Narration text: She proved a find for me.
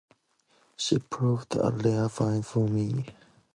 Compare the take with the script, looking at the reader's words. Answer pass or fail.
fail